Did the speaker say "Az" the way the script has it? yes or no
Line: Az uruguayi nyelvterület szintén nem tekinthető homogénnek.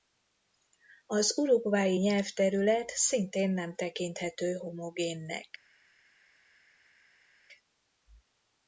yes